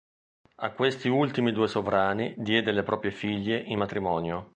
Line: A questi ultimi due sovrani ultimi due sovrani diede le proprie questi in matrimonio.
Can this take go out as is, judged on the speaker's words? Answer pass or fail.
fail